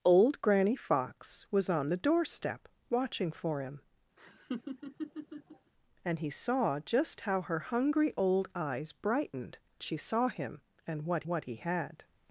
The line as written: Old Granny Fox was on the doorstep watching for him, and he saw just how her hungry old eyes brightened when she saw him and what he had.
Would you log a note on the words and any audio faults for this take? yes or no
yes